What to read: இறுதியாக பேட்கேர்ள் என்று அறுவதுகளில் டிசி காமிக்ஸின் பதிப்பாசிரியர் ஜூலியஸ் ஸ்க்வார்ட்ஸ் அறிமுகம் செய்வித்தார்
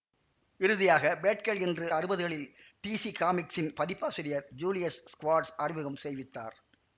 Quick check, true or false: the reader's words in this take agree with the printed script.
true